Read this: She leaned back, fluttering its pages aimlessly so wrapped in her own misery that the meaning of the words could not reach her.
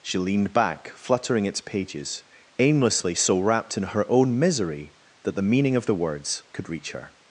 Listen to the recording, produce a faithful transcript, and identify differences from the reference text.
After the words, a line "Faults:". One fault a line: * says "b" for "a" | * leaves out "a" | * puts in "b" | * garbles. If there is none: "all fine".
She leaned back, fluttering its pages aimlessly so wrapped in her own misery that the meaning of the words could reach her.
Faults:
* leaves out "not"